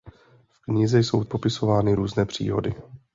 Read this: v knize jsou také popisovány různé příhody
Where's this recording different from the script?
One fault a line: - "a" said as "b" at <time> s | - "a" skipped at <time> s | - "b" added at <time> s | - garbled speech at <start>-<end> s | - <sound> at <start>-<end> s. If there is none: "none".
- "také" skipped at 1.2 s